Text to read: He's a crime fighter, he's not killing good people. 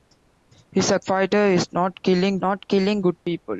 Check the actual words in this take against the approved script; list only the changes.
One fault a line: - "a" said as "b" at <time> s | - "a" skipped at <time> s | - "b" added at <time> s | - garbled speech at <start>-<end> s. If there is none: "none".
- "crime" skipped at 1.0 s
- "not killing" added at 2.4 s